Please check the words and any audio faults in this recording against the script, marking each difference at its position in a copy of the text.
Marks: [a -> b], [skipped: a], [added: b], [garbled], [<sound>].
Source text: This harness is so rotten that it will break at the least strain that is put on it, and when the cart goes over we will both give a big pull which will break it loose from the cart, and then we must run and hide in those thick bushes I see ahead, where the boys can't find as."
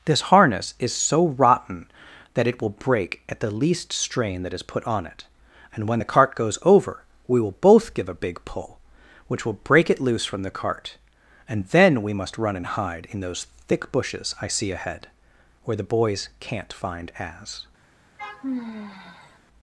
This harness is so rotten that it will break at the least strain that is put on it, and when the cart goes over we will both give a big pull which will break it loose from the cart, and then we must run and hide in those thick bushes I see ahead, where the boys can't find as." [sigh]